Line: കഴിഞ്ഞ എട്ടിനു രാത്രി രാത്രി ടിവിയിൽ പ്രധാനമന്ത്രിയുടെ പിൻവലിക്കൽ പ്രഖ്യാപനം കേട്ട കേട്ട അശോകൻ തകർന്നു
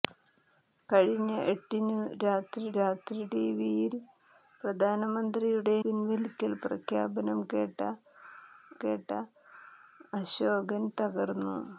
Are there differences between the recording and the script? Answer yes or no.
no